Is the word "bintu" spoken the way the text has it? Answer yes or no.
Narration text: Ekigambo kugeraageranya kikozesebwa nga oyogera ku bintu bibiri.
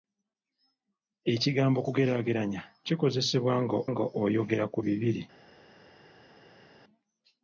no